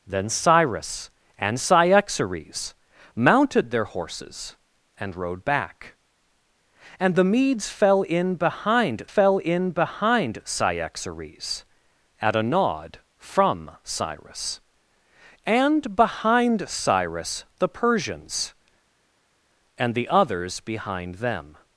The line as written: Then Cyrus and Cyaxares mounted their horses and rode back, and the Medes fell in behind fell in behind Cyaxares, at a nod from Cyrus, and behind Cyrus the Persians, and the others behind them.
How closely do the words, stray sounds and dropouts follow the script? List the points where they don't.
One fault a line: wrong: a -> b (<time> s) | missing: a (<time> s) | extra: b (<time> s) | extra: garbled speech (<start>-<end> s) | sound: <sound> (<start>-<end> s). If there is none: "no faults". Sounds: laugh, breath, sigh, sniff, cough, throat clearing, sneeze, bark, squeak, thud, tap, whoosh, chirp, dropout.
no faults